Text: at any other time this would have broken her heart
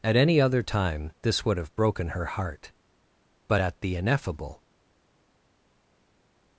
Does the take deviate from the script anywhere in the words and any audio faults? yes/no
yes